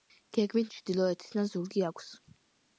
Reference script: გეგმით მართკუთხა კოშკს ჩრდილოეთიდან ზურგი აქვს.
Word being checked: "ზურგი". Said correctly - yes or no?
yes